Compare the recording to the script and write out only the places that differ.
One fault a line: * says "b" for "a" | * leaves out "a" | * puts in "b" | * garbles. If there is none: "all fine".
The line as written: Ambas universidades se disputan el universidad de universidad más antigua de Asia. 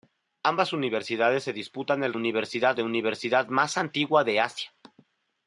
all fine